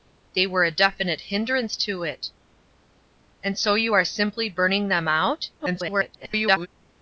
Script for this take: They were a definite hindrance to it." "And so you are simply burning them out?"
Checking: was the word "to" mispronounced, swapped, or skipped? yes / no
no